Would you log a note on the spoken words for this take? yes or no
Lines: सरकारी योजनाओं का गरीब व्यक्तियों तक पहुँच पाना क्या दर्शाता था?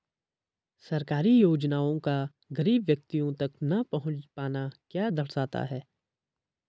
yes